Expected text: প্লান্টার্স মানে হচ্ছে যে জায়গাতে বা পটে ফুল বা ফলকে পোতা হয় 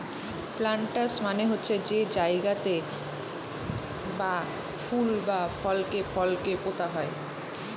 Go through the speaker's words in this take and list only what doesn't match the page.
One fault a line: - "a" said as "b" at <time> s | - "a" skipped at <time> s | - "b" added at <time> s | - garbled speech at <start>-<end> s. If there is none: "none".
- "পটে" skipped at 4.3 s
- "ফলকে" added at 6.1 s